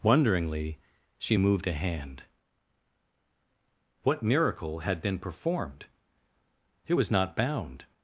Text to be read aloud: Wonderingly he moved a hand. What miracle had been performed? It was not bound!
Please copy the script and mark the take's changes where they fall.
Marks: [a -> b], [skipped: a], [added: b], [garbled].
Wonderingly [he -> she] moved a hand. What miracle had been performed? It was not bound!